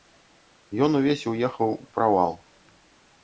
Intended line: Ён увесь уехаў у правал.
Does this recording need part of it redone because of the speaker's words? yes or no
no